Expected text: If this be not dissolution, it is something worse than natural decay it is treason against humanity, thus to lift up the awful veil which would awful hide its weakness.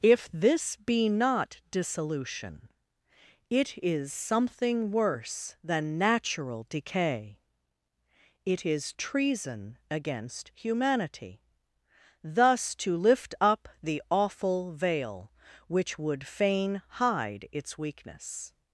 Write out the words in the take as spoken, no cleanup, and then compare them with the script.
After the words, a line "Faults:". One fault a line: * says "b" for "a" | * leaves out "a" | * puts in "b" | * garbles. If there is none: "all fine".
If this be not dissolution, it is something worse than natural decay it is treason against humanity, thus to lift up the awful veil which would fain hide its weakness.
Faults:
* says "fain" for "awful"